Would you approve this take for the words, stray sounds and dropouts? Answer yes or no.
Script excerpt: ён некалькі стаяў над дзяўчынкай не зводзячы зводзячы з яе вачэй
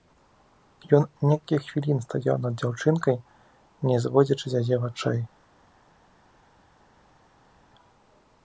no